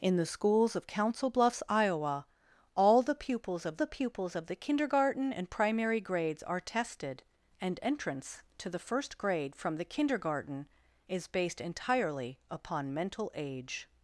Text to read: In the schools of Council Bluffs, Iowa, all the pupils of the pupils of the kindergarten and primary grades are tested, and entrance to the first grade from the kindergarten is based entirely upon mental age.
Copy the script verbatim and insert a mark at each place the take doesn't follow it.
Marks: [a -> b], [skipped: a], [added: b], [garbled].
In the schools of Council Bluffs, Iowa, all the pupils of the pupils of the kindergarten and primary grades are tested, and entrance to the first grade from the kindergarten is based entirely upon mental age.